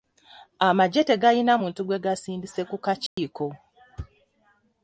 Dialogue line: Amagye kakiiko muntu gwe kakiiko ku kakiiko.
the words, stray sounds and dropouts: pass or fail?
fail